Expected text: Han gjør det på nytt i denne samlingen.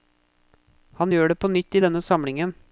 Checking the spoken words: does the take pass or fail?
pass